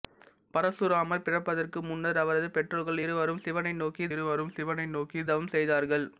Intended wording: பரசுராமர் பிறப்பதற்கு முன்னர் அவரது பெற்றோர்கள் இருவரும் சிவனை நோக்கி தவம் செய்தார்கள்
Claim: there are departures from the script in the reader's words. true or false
true